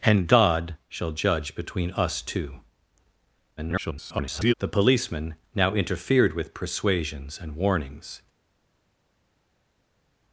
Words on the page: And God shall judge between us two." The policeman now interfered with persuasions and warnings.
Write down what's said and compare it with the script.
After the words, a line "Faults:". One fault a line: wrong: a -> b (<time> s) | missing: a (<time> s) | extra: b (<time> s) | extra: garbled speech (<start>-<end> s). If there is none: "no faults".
And God shall judge between us two." [garbled] The policeman now interfered with persuasions and warnings.
Faults:
extra: garbled speech (3.6-4.5 s)